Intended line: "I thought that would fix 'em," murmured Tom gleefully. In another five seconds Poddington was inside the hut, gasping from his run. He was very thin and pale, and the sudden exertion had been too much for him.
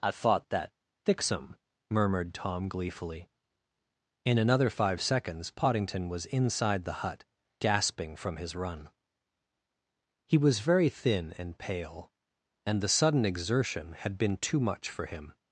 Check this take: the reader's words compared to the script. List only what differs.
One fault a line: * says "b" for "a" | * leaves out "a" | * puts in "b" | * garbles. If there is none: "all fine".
* leaves out "would"